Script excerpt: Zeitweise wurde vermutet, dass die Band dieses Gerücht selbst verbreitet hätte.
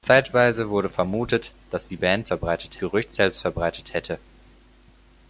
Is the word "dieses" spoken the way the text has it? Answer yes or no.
no